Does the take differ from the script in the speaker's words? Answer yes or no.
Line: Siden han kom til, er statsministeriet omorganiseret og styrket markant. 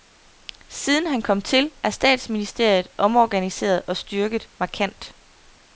no